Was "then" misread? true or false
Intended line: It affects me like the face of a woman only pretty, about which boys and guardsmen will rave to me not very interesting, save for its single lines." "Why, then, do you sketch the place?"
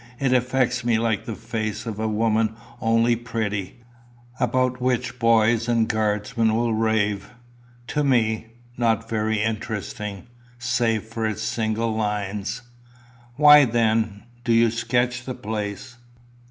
false